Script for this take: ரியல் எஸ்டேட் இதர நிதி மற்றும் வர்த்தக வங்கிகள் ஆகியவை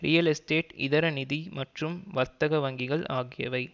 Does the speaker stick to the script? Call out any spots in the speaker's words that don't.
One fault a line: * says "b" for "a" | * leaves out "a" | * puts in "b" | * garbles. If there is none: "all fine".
all fine